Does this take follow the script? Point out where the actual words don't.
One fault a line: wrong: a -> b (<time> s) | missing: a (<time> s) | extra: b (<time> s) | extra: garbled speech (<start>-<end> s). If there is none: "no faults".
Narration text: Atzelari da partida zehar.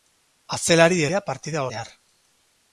no faults